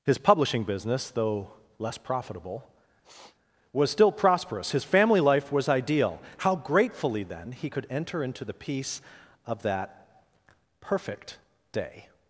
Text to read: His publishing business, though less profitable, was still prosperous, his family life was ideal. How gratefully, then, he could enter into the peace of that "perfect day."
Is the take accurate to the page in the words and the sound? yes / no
no